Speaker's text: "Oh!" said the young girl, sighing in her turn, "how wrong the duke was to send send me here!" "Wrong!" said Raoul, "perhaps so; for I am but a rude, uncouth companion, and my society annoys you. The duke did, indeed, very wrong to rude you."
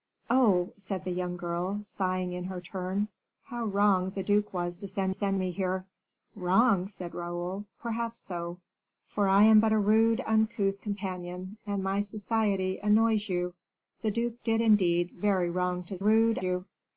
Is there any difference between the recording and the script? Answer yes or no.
no